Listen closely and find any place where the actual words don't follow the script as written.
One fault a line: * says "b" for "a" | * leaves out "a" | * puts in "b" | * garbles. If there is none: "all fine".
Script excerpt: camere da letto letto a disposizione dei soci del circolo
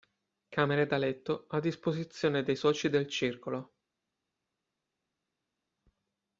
* leaves out "letto"